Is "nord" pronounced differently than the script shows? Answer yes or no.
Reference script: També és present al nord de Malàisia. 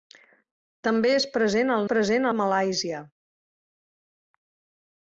yes